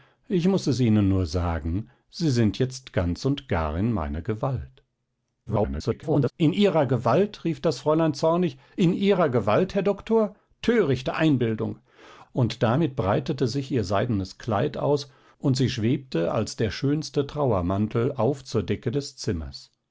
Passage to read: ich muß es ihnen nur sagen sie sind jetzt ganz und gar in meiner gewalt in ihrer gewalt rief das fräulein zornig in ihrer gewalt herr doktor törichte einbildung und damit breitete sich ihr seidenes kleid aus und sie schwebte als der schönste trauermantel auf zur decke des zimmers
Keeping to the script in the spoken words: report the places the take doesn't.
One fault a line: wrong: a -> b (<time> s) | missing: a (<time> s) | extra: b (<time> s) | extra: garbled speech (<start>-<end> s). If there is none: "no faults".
extra: garbled speech (5.5-6.3 s)